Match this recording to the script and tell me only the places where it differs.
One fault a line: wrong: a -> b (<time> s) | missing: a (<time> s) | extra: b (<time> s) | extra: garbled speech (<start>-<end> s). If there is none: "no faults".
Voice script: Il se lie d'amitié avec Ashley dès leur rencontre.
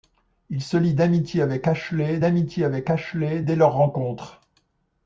extra: d'amitié avec Ashley (2.2 s)